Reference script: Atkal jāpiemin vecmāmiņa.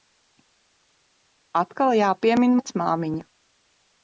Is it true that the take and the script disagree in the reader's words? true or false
false